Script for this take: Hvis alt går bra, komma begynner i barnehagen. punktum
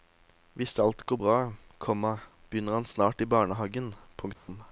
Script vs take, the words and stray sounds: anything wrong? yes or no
yes